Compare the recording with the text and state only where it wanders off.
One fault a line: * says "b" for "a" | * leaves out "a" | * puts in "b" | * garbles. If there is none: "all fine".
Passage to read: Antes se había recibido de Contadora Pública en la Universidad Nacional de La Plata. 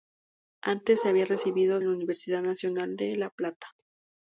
* leaves out "de Contadora Pública"